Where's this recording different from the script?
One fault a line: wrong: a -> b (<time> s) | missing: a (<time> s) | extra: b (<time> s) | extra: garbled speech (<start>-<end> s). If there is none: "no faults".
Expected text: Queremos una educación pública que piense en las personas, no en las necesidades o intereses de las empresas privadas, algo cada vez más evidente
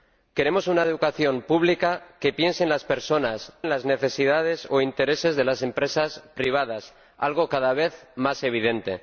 missing: no (3.5 s)